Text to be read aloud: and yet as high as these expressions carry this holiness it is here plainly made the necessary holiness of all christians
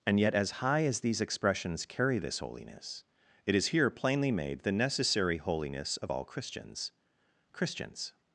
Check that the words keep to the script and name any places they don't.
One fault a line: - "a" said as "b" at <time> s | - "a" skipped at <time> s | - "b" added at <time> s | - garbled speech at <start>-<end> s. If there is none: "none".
- "christians" added at 7.5 s